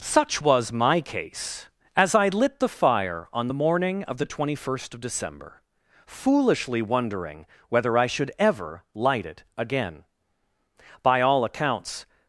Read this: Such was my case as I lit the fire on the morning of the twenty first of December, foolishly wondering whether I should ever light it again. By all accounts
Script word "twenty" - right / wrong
right